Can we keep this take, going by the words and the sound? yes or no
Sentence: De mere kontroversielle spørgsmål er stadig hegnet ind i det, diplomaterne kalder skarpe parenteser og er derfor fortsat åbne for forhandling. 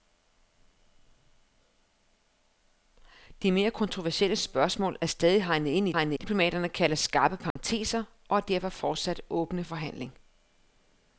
no